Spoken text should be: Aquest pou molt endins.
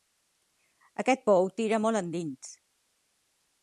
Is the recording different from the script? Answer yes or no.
yes